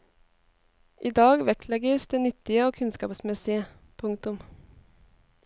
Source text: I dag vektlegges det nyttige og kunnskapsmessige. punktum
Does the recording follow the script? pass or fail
pass